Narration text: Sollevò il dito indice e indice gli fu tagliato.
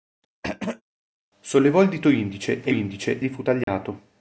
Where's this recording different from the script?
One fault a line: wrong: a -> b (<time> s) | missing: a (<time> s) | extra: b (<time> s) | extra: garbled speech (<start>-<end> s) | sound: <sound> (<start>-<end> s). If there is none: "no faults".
sound: throat clearing (0.4-0.8 s)
sound: dropout (3.6-3.7 s)